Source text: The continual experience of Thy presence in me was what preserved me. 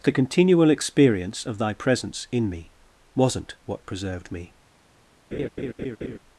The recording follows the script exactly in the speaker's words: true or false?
false